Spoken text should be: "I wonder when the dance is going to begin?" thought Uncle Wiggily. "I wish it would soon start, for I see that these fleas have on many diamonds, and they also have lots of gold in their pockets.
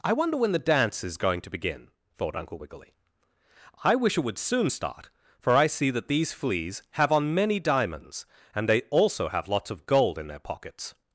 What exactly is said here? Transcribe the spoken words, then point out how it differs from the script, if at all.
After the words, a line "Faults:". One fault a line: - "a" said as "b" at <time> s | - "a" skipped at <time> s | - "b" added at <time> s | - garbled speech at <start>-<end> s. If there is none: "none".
"I wonder when the dance is going to begin?" thought Uncle Wiggily. "I wish it would soon start, for I see that these fleas have on many diamonds, and they also have lots of gold in their pockets.
Faults:
none